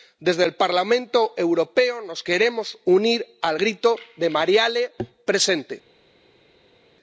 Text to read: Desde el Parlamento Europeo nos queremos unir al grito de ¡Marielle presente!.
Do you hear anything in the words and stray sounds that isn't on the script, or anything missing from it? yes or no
no